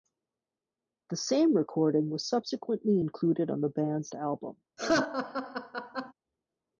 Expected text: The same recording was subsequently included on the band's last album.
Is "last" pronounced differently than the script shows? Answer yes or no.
yes